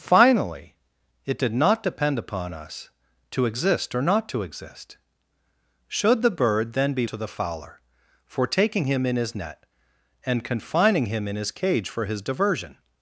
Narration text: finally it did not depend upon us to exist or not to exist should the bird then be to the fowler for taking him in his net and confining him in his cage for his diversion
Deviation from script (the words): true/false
false